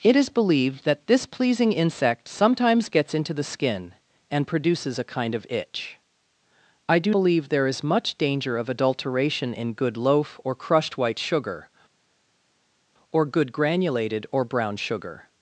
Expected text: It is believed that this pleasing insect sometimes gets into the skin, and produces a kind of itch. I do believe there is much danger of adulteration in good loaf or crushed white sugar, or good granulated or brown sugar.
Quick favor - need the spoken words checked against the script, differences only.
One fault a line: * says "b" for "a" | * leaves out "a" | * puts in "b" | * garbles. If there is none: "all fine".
all fine